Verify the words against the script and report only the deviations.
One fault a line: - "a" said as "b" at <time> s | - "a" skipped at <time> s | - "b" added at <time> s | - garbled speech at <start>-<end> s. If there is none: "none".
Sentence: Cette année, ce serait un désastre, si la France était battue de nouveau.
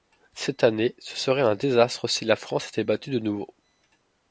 none